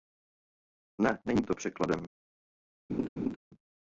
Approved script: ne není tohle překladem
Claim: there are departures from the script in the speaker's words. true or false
true